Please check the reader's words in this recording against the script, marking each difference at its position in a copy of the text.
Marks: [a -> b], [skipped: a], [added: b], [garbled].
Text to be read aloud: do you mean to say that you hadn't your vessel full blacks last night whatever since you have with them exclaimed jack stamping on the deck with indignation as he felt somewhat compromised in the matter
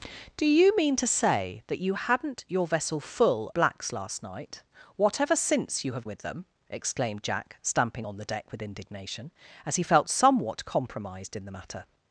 do you mean to say that you hadn't your vessel full blacks last night whatever since you have with them exclaimed jack stamping on the deck with indignation as he felt somewhat compromised in the matter